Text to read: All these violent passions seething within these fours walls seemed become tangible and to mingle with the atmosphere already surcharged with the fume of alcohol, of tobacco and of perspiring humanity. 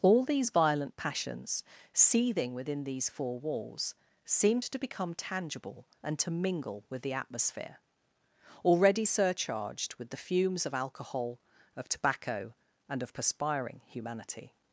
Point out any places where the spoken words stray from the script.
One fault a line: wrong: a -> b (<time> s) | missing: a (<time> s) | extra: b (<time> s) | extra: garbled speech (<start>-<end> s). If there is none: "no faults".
wrong: fours -> four (3.1 s)
extra: to (4.6 s)
wrong: fume -> fumes (10.2 s)